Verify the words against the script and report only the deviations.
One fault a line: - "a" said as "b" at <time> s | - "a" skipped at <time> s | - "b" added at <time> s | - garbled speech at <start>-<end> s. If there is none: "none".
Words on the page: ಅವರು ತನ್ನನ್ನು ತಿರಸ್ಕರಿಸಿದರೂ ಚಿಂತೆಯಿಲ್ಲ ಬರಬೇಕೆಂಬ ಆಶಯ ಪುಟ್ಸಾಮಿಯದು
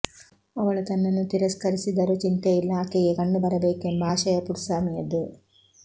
- "ಅವರು" said as "ಅವಳು" at 0.6 s
- "ಆಕೆಗೆ ಕಣ್ಣು" added at 2.8 s